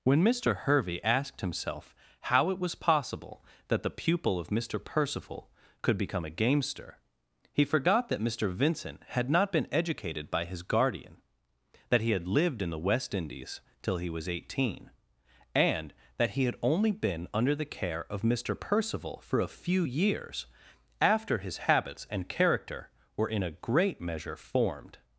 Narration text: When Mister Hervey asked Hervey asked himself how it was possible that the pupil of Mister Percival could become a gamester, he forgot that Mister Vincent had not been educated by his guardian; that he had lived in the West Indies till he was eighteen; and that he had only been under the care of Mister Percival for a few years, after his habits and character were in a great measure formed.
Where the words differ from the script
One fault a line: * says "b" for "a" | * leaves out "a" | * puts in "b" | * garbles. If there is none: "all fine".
* leaves out "Hervey asked"